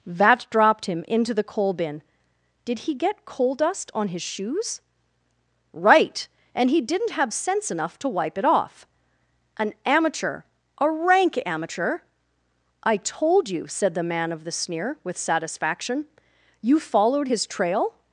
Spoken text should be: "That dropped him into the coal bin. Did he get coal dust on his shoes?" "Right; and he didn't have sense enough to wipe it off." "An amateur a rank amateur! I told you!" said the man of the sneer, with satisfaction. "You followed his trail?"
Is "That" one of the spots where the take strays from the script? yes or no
yes